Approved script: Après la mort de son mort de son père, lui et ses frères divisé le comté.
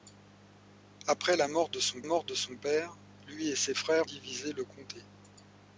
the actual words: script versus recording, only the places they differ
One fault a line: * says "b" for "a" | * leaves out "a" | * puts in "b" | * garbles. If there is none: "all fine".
all fine